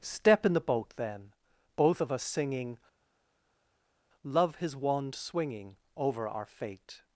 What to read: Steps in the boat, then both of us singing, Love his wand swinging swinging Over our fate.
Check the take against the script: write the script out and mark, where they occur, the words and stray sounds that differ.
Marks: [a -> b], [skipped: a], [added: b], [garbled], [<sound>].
[Steps -> Step] in the boat, then both of us singing, Love his wand swinging [skipped: swinging] Over our fate.